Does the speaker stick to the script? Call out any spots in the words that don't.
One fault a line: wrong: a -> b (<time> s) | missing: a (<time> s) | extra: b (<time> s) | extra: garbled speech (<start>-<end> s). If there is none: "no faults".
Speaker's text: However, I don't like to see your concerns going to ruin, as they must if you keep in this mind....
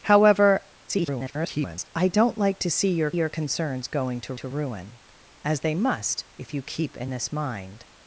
extra: garbled speech (0.9-1.9 s)
extra: your (3.1 s)
extra: to (4.4 s)